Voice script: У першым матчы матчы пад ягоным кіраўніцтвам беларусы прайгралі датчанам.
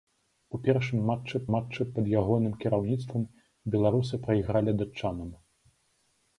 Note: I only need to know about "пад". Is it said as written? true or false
true